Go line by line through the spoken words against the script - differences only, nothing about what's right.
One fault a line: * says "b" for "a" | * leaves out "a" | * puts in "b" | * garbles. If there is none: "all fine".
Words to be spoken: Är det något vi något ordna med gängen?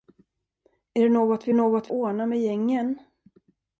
all fine